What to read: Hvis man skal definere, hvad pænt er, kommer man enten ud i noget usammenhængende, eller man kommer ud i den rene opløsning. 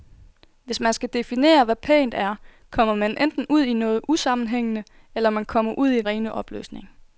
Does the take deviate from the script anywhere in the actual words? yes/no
yes